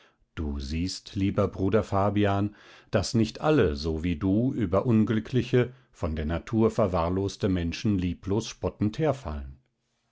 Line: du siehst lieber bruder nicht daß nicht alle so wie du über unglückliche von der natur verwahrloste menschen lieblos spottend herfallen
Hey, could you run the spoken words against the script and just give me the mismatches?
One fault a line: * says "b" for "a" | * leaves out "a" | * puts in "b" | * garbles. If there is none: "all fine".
* says "fabian" for "nicht"